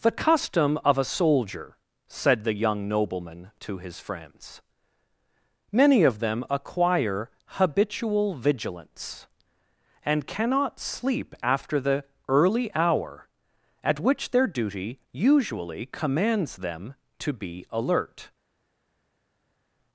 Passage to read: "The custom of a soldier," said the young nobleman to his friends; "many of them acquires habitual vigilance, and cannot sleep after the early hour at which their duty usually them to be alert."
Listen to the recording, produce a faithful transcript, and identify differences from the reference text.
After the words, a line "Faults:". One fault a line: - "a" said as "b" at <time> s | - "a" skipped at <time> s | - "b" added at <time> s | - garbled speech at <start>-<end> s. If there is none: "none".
"The custom of a soldier," said the young nobleman to his friends; "many of them acquire habitual vigilance, and cannot sleep after the early hour at which their duty usually commands them to be alert."
Faults:
- "acquires" said as "acquire" at 6.5 s
- "commands" added at 15.9 s